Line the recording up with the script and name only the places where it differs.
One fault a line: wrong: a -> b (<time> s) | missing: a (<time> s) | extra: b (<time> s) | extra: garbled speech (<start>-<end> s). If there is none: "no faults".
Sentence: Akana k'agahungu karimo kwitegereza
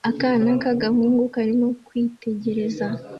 no faults